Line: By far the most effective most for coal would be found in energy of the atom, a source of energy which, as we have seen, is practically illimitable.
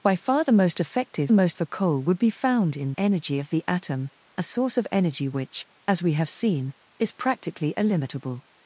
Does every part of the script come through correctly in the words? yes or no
yes